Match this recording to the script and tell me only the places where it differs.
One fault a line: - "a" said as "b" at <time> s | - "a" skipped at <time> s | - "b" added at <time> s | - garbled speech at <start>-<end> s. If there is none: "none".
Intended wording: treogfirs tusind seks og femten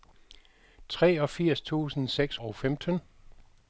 none